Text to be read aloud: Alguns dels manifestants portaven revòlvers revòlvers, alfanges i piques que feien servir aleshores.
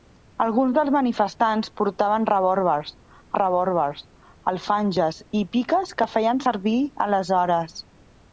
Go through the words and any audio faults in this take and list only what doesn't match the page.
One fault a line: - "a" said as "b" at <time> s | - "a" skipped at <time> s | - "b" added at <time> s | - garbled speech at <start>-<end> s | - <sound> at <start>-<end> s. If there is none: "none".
none